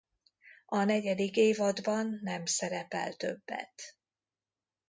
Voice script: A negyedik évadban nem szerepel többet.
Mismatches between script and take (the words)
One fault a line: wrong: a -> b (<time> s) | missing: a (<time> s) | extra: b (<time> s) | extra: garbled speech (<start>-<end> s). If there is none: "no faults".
no faults